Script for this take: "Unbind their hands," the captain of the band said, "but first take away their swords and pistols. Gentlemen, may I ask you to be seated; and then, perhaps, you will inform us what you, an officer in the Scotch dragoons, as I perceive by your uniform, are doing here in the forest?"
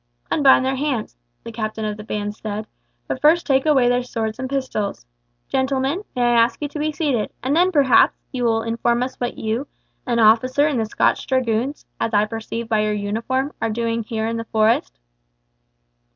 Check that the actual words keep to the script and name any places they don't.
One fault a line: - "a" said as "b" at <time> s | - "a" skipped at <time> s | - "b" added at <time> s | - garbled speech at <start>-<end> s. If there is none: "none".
none